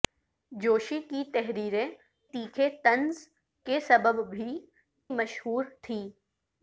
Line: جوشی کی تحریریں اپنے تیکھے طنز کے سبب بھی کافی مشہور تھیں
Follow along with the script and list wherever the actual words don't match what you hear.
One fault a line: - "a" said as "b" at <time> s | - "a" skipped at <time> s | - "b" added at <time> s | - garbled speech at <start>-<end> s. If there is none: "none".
- "اپنے" skipped at 1.9 s
- "کافی" skipped at 4.6 s